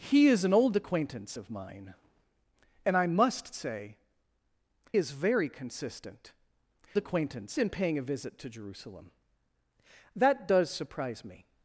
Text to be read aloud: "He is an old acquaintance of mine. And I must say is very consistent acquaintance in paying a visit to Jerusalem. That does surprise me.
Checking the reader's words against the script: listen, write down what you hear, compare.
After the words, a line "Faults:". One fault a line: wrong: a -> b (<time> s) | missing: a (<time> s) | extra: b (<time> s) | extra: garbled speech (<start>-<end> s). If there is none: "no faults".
"He is an old acquaintance of mine. And I must say is very consistent acquaintance in paying a visit to Jerusalem. That does surprise me.
Faults:
no faults